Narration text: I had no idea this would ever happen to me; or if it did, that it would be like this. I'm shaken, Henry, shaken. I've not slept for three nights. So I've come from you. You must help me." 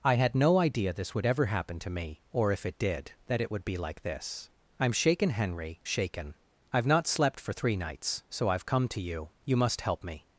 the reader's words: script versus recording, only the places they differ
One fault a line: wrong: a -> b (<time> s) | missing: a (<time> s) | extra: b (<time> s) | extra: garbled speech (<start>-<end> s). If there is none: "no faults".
wrong: from -> to (8.9 s)